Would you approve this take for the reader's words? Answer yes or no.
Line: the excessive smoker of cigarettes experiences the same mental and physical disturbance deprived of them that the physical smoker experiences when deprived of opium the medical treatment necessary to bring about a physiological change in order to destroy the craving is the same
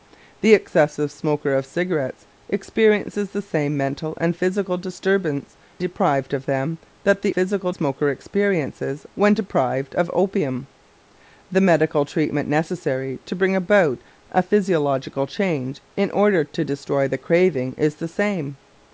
yes